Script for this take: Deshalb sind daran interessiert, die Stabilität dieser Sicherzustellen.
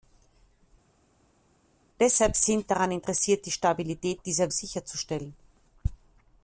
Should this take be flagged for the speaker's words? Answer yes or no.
no